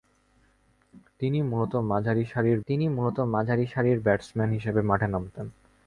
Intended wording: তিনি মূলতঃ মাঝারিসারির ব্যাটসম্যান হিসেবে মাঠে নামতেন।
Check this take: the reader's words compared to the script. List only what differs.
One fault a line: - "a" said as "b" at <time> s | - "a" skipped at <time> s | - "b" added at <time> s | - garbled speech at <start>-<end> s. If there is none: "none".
- "তিনি মূলতঃ মাঝারিসারির" added at 2.7 s